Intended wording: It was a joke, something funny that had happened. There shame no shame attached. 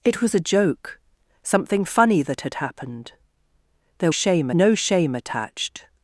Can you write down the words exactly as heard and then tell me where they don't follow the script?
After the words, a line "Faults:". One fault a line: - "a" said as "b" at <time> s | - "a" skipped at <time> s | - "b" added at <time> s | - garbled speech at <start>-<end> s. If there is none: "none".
It was a joke, something funny that had happened. There shame no shame attached.
Faults:
none